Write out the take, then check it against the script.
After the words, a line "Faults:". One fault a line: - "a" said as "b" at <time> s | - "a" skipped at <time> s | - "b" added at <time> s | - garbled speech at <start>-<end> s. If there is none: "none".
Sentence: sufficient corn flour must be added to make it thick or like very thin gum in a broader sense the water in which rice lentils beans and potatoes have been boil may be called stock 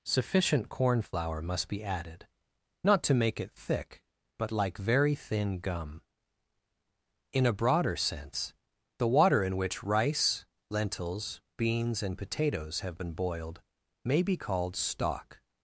sufficient corn flour must be added not to make it thick but like very thin gum in a broader sense the water in which rice lentils beans and potatoes have been boiled may be called stock
Faults:
- "not" added at 2.8 s
- "or" said as "but" at 4.4 s
- "boil" said as "boiled" at 13.1 s